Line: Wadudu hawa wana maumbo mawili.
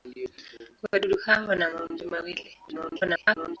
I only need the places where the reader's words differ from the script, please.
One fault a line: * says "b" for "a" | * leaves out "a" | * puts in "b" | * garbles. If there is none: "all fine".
* garbles